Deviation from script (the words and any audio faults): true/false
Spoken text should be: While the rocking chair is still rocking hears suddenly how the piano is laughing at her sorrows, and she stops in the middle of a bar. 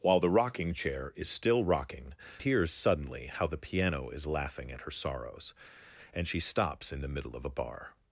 false